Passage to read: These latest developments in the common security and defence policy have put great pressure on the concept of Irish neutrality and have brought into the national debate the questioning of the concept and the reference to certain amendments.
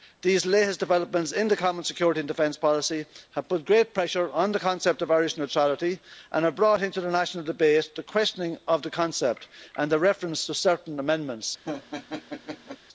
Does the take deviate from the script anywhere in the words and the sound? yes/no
yes